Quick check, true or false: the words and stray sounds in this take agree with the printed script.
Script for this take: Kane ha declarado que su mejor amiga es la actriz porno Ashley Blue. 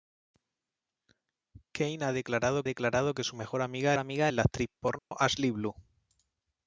false